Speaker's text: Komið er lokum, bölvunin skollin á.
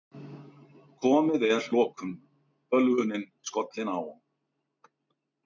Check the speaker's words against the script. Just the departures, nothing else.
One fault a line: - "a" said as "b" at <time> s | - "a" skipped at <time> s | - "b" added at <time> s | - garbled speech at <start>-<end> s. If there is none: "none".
none